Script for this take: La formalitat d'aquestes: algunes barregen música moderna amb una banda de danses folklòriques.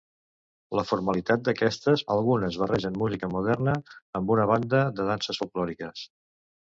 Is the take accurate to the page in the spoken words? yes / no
yes